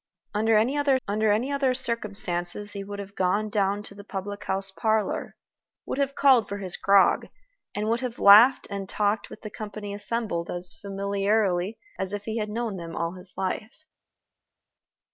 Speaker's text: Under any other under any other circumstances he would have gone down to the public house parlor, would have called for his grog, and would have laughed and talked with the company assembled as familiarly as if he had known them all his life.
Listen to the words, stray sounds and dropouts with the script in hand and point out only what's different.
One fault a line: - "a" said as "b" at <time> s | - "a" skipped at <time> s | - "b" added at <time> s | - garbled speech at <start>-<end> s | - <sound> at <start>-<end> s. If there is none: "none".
none